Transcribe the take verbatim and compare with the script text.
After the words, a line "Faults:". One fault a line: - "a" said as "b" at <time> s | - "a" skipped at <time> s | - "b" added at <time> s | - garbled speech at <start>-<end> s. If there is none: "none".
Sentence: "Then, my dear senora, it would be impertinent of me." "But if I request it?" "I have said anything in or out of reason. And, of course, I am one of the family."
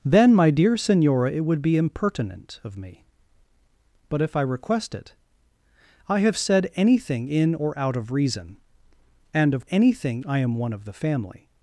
"Then, my dear senora, it would be impertinent of me." "But if I request it?" "I have said anything in or out of reason. And, of anything, I am one of the family."
Faults:
- "course" said as "anything" at 9.7 s